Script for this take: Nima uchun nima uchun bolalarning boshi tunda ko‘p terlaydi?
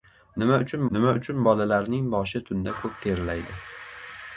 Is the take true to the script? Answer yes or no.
yes